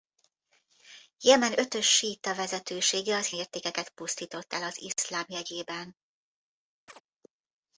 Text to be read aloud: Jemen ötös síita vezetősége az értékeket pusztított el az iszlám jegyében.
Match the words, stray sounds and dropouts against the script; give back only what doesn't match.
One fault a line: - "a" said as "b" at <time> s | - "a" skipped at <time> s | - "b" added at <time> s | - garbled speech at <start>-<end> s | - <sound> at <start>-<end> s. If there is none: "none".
- chirp at 6.9-7.0 s